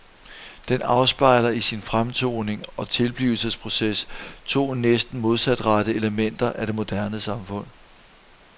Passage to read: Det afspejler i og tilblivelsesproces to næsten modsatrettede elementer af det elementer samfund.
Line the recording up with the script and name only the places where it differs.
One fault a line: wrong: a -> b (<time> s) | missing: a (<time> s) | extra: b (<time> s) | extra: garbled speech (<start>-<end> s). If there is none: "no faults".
wrong: Det -> Den (0.7 s)
extra: sin fremtoning (1.6 s)
wrong: elementer -> moderne (6.8 s)